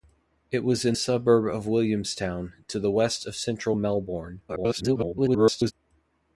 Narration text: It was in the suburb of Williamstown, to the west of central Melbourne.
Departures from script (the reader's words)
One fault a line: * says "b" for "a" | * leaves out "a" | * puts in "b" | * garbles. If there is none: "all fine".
* leaves out "the"
* garbles